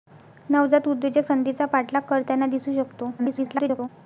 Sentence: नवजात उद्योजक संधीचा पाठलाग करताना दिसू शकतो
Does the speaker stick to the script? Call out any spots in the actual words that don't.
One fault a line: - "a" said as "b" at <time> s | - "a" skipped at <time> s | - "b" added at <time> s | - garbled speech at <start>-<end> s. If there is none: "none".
- garbled speech at 3.2-3.9 s